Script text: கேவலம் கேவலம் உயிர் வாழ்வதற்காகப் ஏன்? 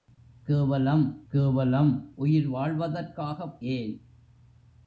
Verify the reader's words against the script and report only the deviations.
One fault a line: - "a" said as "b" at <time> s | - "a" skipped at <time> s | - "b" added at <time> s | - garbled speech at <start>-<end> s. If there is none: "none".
none